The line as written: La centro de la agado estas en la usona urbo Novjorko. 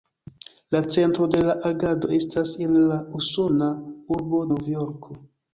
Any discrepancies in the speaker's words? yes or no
no